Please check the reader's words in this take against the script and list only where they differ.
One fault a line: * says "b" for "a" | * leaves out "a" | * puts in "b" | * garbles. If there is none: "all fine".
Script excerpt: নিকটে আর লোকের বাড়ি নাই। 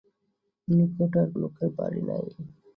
all fine